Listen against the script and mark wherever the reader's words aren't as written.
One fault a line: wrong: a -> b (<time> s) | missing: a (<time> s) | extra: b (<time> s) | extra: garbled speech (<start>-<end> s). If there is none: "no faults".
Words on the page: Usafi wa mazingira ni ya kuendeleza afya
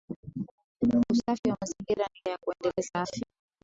no faults